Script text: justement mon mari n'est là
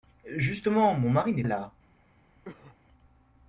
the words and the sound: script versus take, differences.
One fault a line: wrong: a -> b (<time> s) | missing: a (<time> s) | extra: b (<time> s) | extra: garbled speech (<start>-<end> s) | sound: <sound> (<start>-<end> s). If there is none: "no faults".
sound: cough (2.4-2.8 s)